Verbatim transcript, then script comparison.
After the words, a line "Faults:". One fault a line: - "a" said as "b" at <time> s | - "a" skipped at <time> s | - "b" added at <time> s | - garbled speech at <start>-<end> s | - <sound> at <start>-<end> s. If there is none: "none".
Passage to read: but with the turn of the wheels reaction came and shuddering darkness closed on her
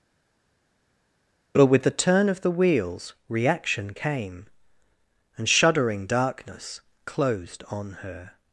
but with the turn of the wheels reaction came and shuddering darkness closed on her
Faults:
none